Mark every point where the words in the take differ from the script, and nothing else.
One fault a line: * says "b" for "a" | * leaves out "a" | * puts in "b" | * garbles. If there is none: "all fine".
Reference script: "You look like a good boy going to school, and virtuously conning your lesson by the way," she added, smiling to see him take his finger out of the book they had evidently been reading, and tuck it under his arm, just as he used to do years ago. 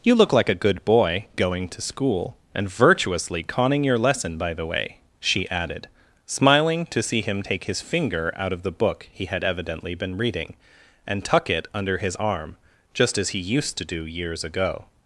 * says "he" for "they"